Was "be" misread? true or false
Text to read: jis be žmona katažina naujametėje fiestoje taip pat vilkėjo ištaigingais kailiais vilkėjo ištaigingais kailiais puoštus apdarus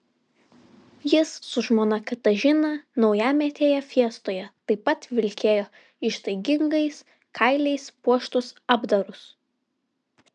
true